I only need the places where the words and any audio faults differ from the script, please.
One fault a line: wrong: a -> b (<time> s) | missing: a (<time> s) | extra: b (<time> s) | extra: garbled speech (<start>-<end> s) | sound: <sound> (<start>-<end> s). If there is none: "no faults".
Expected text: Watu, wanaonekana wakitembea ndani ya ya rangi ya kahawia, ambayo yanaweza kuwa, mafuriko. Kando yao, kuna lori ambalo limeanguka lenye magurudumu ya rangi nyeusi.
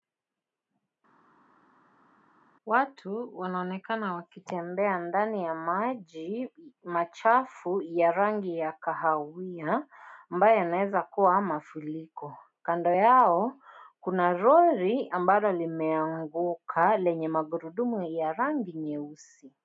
extra: maji machafu (5.5 s)